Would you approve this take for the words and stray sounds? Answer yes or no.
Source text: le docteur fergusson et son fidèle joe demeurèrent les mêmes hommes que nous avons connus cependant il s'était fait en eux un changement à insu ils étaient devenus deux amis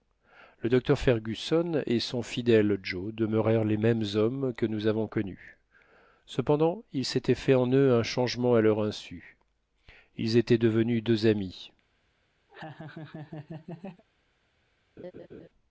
no